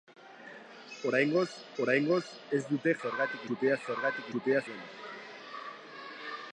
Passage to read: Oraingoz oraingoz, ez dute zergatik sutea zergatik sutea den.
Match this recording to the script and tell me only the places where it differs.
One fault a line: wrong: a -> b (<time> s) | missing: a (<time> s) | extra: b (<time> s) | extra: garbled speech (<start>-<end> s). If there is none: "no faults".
no faults